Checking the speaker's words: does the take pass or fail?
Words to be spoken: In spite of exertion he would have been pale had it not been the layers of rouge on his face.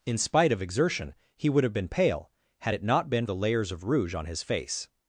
pass